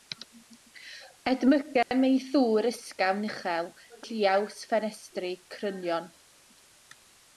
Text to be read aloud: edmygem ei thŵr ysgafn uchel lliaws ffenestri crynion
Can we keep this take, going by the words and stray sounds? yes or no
no